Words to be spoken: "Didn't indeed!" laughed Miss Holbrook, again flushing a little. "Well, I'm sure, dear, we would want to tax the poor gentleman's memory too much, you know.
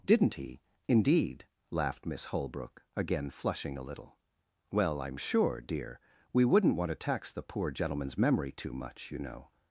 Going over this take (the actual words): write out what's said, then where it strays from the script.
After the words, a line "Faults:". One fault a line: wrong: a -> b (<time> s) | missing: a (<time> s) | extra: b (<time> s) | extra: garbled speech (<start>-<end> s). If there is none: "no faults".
"Didn't he, indeed!" laughed Miss Holbrook, again flushing a little. "Well, I'm sure, dear, we wouldn't want to tax the poor gentleman's memory too much, you know.
Faults:
extra: he (0.3 s)
wrong: would -> wouldn't (6.4 s)